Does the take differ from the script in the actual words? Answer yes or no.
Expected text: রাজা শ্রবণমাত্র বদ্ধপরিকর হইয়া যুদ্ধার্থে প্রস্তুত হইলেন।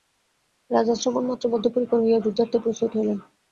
no